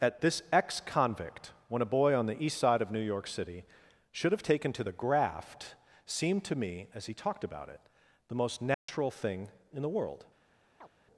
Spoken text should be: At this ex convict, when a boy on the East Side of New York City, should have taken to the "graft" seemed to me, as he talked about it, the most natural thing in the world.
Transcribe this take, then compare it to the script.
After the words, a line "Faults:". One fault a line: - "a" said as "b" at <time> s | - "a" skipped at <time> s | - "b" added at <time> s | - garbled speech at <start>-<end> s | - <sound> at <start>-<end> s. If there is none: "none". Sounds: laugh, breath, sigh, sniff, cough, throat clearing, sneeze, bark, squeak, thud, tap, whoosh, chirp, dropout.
At this ex convict, when a boy on the East Side of New York City, should have taken to the "graft" seemed to me, as he talked about it, the most natural thing in the world.
Faults:
- dropout at 8.7-8.9 s
- chirp at 10.8-10.9 s